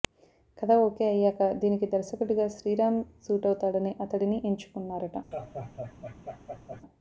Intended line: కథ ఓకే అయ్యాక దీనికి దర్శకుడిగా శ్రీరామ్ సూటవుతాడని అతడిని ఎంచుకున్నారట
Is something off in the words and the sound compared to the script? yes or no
yes